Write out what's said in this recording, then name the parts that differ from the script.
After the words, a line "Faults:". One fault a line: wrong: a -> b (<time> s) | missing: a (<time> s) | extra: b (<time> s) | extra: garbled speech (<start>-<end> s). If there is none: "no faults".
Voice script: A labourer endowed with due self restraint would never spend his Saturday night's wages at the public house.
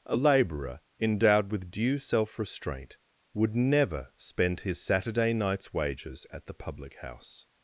A labourer endowed with due self restraint would never spend his Saturday night's wages at the public house.
Faults:
no faults